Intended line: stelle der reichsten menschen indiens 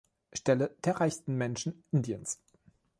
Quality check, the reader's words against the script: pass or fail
pass